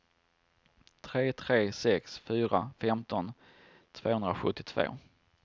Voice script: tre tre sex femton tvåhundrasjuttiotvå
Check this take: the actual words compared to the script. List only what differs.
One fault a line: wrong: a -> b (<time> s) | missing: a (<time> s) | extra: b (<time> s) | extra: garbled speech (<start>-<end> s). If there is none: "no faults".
extra: fyra (2.3 s)